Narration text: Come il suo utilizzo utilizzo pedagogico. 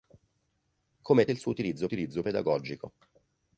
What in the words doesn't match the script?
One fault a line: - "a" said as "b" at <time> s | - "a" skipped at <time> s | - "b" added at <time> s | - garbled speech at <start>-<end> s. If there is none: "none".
none